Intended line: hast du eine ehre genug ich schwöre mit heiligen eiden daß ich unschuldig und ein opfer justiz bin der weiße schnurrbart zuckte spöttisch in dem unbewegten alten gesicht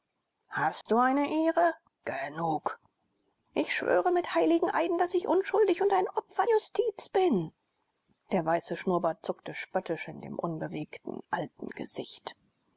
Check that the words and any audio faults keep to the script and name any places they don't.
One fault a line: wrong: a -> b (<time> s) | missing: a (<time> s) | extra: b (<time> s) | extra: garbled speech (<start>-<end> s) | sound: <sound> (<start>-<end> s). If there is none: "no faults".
sound: dropout (0.8-0.9 s)